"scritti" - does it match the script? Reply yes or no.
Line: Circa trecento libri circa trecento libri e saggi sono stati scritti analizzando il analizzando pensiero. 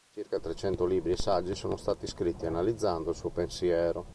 yes